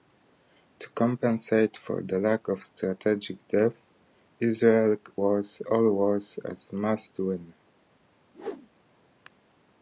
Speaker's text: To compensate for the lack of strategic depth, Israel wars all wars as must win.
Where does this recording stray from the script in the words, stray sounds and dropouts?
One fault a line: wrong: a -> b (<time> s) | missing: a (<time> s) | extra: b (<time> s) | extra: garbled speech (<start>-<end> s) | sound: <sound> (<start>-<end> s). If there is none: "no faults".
sound: whoosh (8.3-8.7 s)